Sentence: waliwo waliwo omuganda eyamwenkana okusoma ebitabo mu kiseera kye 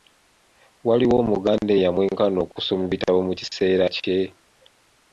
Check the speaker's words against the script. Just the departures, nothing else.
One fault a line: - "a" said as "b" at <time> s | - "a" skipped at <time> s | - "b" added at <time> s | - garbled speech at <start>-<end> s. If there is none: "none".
- "waliwo" skipped at 1.1 s